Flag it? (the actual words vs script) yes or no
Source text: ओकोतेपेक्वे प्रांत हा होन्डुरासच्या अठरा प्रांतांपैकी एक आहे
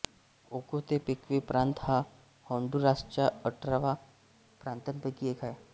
no